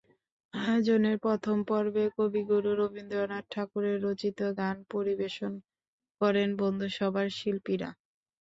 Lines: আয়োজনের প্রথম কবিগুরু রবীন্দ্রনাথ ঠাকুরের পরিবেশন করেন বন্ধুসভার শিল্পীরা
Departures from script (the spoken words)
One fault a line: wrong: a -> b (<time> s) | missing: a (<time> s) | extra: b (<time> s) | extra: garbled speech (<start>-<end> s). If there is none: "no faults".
extra: পর্বে (1.7 s)
extra: রচিত গান (4.1 s)